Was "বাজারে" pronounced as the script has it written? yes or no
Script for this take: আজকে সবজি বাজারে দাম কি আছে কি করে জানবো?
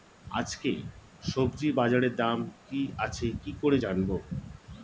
yes